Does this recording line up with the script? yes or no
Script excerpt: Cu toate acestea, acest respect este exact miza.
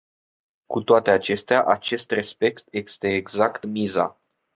yes